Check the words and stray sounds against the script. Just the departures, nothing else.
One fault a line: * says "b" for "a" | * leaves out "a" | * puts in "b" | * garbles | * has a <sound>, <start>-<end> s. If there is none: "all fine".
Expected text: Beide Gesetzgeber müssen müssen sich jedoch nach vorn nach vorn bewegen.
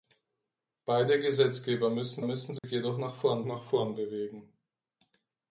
* has a dropout, 2.6-2.6 s